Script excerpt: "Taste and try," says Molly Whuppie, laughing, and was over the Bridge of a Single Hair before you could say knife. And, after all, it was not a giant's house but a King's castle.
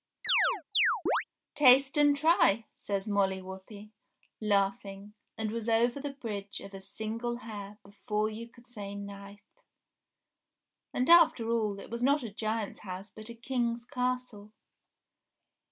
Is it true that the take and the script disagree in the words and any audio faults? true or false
true